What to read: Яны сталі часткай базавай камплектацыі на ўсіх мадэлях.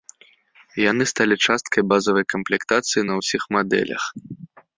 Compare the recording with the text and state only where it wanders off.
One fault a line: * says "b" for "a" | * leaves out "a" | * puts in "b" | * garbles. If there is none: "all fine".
all fine